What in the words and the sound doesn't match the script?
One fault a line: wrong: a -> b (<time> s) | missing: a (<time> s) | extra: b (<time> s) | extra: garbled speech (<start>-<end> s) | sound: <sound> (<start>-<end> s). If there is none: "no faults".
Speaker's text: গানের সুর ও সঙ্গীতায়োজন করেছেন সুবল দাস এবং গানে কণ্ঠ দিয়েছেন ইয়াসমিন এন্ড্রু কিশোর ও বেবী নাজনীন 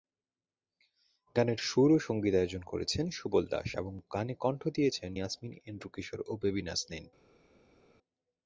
no faults